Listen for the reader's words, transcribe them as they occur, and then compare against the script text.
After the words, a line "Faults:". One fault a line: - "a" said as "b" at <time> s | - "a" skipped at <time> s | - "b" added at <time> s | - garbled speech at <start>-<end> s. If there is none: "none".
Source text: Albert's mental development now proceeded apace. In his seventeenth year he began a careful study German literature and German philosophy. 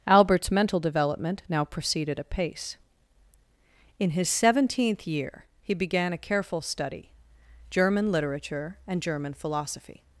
Albert's mental development now proceeded apace. In his seventeenth year he began a careful study German literature and German philosophy.
Faults:
none